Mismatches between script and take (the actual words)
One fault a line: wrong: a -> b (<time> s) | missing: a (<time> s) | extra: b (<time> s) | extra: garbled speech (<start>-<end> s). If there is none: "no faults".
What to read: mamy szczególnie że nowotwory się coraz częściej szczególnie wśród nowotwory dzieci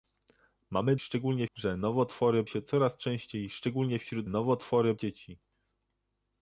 no faults